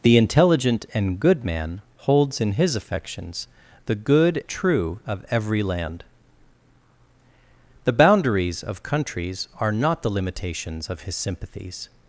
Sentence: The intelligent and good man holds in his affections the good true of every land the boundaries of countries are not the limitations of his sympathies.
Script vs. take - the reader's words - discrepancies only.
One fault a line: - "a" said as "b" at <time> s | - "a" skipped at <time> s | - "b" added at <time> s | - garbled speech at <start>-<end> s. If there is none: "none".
none